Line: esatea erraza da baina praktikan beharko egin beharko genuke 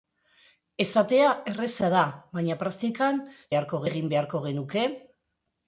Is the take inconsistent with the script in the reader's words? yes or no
no